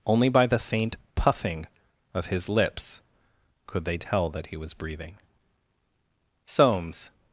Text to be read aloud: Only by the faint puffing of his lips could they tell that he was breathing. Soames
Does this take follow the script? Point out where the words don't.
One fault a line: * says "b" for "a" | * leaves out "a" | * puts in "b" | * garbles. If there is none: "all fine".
all fine